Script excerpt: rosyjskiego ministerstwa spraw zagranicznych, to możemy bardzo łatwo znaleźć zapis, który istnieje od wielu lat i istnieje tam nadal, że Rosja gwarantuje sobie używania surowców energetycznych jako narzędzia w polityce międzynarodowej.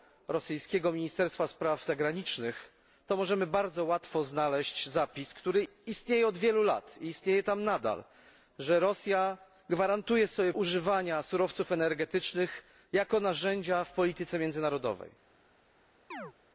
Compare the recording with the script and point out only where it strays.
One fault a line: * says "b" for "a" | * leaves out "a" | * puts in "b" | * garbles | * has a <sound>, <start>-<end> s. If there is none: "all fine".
* has a chirp, 16.1-16.3 s